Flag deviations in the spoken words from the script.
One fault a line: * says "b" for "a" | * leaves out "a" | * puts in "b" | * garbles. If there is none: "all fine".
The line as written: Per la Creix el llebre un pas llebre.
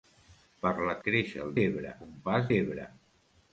all fine